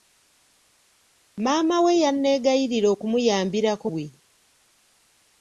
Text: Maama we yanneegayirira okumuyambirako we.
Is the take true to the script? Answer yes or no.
yes